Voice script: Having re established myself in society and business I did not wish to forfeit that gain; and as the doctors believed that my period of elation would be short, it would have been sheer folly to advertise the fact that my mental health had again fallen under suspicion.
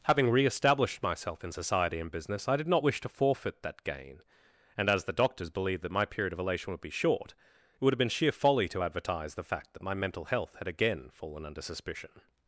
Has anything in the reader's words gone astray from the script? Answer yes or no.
no